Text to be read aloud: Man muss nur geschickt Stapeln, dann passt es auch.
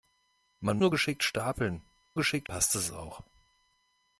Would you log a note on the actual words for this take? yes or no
yes